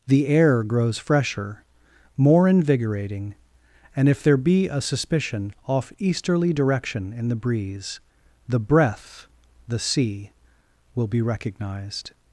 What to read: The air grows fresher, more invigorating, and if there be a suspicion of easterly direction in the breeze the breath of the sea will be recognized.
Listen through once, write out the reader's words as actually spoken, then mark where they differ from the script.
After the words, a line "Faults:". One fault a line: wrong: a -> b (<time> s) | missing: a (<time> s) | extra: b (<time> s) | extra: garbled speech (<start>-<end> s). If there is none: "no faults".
The air grows fresher, more invigorating, and if there be a suspicion off easterly direction in the breeze the breath the sea will be recognized.
Faults:
wrong: of -> off (5.7 s)
missing: of (9.3 s)